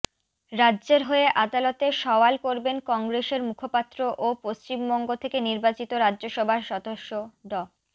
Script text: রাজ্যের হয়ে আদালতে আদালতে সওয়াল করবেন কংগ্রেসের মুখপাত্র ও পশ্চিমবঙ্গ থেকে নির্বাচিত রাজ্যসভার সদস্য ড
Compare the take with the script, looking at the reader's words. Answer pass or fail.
fail